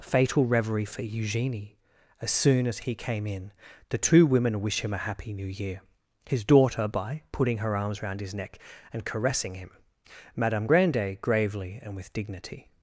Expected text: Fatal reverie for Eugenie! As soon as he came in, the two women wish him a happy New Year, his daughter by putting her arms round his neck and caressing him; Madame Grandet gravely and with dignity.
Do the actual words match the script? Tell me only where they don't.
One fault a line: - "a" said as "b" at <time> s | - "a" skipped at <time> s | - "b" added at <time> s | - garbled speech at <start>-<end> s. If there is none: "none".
none